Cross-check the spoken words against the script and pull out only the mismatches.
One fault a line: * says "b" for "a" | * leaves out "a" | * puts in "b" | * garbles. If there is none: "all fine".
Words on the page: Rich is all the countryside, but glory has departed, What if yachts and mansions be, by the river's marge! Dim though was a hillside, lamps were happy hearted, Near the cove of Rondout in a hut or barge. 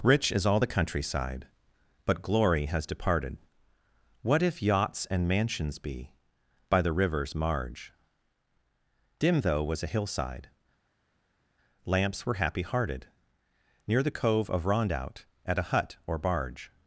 * says "at" for "in"